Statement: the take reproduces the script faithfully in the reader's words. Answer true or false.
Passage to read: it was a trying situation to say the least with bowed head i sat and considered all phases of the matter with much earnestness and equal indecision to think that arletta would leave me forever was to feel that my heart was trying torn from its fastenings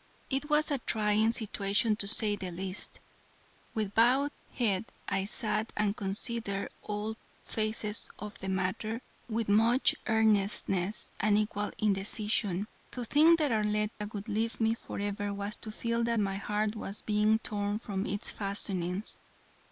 false